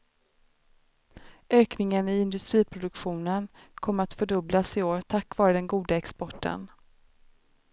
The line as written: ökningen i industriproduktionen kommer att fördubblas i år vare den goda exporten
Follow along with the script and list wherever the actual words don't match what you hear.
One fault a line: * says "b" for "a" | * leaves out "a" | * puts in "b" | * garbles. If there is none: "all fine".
* puts in "tack"